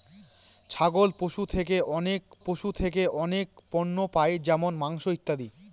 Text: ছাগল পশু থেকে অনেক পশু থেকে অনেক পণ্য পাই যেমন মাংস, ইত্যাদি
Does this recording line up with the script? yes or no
yes